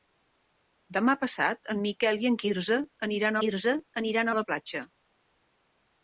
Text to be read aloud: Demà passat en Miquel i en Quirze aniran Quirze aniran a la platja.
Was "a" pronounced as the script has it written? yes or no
yes